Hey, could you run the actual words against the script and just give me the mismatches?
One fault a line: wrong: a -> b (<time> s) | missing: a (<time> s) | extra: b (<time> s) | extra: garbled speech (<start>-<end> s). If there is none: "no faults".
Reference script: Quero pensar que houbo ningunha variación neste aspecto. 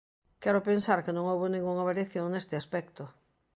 extra: non (1.2 s)